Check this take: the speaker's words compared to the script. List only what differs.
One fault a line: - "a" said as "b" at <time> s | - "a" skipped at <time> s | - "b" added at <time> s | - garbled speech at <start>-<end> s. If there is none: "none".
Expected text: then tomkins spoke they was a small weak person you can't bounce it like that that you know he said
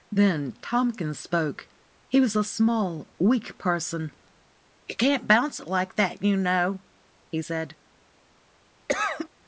- "they" said as "he" at 2.1 s
- "that" skipped at 6.2 s